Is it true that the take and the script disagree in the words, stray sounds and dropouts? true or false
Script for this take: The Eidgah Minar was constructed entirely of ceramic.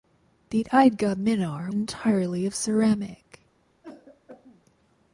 true